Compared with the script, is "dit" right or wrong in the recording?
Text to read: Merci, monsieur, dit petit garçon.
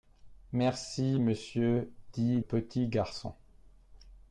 right